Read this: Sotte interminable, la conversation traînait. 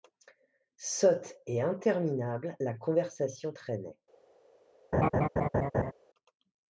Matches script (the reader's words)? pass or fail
fail